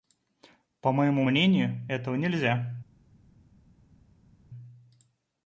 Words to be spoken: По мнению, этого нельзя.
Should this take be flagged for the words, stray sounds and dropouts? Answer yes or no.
yes